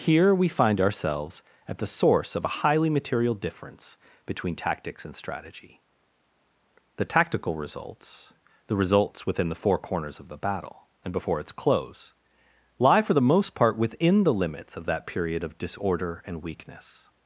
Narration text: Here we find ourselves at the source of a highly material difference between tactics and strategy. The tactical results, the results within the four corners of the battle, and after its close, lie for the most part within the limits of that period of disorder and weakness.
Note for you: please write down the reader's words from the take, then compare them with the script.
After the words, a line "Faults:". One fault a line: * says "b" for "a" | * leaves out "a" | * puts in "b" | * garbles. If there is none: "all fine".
Here we find ourselves at the source of a highly material difference between tactics and strategy. The tactical results, the results within the four corners of the battle, and before its close, lie for the most part within the limits of that period of disorder and weakness.
Faults:
* says "before" for "after"